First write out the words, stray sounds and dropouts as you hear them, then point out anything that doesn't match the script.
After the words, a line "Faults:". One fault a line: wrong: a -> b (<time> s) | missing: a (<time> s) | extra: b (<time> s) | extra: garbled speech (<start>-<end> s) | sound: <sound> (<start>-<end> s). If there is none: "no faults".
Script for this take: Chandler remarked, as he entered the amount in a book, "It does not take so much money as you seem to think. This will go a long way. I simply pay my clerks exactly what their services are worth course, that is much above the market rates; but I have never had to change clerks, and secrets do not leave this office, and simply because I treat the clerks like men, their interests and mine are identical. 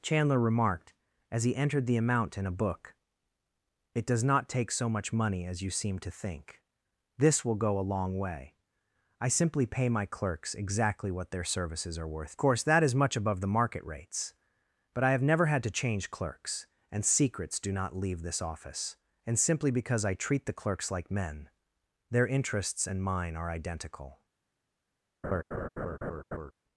Chandler remarked, as he entered the amount in a book, "It does not take so much money as you seem to think. This will go a long way. I simply pay my clerks exactly what their services are worth course, that is much above the market rates; but I have never had to change clerks, and secrets do not leave this office, and simply because I treat the clerks like men, their interests and mine are identical.
Faults:
sound: laugh (25.2-26.5 s)